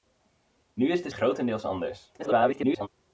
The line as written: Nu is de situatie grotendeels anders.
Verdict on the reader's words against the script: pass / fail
fail